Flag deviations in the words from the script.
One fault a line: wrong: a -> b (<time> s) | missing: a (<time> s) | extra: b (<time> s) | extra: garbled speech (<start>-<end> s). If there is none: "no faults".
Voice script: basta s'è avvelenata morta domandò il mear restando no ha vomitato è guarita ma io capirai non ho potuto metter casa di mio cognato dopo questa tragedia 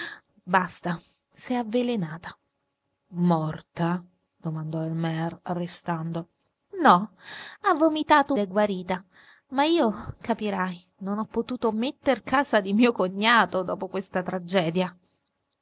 no faults